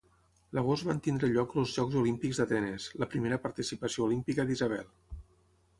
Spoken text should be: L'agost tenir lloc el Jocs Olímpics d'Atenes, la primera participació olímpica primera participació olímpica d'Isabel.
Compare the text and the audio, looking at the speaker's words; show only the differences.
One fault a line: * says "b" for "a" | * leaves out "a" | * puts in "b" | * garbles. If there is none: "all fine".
* puts in "van"
* says "els" for "el"
* leaves out "primera participació olímpica"